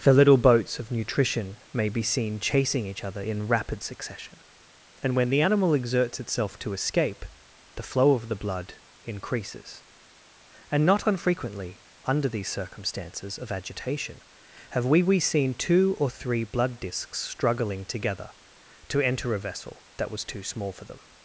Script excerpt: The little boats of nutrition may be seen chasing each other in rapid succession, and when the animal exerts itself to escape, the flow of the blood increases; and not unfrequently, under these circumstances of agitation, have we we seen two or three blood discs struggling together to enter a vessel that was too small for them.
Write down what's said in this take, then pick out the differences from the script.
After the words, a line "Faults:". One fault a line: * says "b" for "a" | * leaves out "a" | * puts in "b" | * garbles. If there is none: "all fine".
The little boats of nutrition may be seen chasing each other in rapid succession, and when the animal exerts itself to escape, the flow of the blood increases; and not unfrequently, under these circumstances of agitation, have we we seen two or three blood discs struggling together to enter a vessel that was too small for them.
Faults:
all fine